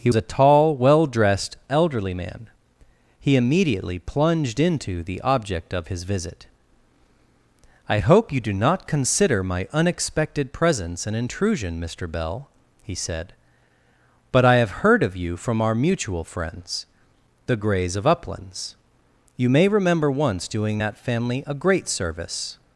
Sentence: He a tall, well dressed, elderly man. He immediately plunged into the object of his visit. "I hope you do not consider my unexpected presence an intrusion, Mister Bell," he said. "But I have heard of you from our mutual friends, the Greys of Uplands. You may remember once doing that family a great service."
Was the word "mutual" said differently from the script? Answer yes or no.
no